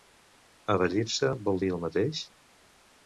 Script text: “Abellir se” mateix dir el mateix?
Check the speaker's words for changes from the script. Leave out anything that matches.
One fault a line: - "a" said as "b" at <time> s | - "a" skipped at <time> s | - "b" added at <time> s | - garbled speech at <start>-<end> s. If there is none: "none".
- "mateix" said as "vol" at 1.5 s